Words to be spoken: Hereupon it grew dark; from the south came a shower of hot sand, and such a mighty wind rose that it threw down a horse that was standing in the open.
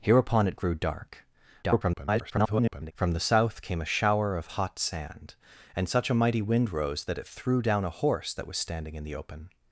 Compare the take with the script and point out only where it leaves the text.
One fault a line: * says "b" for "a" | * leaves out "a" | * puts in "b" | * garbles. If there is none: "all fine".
* garbles